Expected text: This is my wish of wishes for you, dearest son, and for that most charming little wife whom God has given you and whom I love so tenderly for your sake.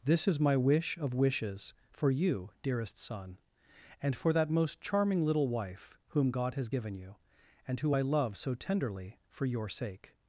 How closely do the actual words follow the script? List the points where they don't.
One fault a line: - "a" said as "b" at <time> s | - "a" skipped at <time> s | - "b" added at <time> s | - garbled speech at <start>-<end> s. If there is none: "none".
- "whom" said as "who" at 7.8 s